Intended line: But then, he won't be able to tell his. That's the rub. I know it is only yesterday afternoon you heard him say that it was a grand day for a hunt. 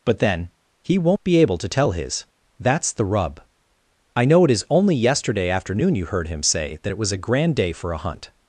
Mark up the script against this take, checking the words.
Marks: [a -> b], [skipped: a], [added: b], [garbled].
But then, he won't be able to tell his. That's the rub. I know it is only yesterday afternoon you heard him say that it was a grand day for a hunt.